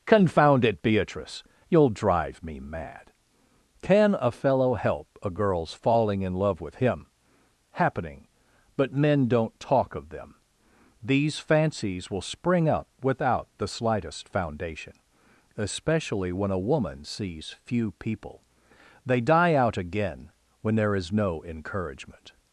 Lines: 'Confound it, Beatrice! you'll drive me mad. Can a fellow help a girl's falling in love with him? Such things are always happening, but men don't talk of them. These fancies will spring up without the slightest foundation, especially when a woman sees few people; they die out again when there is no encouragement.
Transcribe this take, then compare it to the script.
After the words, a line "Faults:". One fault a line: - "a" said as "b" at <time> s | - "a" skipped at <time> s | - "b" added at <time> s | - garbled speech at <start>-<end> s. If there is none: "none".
'Confound it, Beatrice! you'll drive me mad. Can a fellow help a girl's falling in love with him? happening, but men don't talk of them. These fancies will spring up without the slightest foundation, especially when a woman sees few people; they die out again when there is no encouragement.
Faults:
- "Such things are always" skipped at 7.1 s